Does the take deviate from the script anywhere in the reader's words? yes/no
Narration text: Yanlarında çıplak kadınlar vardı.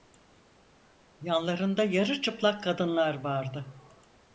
yes